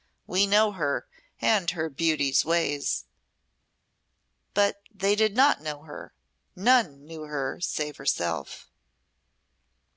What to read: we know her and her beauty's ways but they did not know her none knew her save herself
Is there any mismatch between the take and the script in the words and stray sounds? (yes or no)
no